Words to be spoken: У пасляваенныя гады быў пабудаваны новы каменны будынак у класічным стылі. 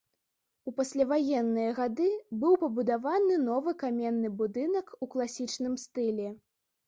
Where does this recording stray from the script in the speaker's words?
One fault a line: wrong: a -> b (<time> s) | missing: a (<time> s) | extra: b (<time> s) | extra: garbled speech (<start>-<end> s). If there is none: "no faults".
no faults